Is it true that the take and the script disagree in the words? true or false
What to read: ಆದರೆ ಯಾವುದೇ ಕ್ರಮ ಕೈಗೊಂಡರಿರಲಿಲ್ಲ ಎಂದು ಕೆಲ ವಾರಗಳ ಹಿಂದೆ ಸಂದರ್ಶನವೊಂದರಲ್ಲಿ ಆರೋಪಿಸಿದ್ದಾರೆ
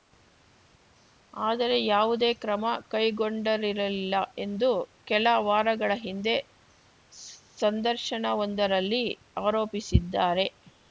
false